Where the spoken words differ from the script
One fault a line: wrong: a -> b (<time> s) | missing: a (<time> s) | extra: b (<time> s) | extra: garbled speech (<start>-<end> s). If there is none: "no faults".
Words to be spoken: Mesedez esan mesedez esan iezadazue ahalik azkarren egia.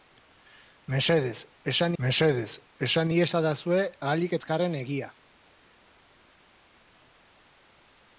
no faults